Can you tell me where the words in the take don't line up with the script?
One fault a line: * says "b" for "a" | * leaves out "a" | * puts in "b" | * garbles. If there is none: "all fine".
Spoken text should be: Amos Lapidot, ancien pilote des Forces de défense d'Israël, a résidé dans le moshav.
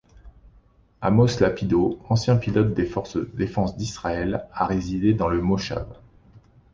all fine